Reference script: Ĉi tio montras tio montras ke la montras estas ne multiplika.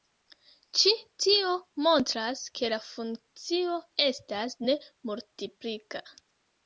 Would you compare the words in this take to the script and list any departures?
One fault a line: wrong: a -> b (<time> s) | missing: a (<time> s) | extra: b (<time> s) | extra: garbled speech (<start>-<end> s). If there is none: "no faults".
missing: tio montras (2.4 s)
wrong: montras -> funkcio (2.9 s)